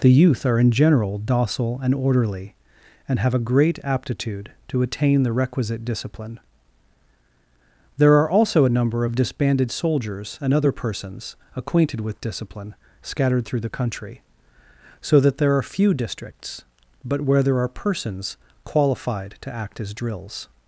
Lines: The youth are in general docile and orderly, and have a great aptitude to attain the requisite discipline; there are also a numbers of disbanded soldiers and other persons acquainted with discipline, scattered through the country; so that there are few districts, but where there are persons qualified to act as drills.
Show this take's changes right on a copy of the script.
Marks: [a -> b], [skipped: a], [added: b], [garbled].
The youth are in general docile and orderly, and have a great aptitude to attain the requisite discipline; there are also a [numbers -> number] of disbanded soldiers and other persons acquainted with discipline, scattered through the country; so that there are few districts, but where there are persons qualified to act as drills.